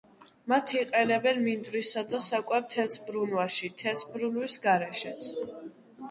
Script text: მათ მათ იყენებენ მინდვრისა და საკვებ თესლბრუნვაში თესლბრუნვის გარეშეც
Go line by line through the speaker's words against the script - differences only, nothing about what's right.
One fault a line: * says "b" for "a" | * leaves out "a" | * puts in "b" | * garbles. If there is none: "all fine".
* leaves out "მათ"